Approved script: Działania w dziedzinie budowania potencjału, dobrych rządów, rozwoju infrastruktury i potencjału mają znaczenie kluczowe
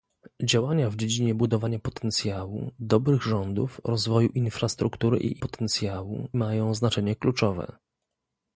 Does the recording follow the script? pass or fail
pass